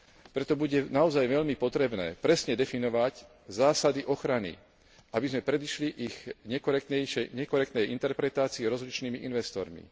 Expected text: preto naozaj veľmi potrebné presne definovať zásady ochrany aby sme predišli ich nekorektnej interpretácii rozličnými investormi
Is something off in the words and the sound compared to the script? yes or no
yes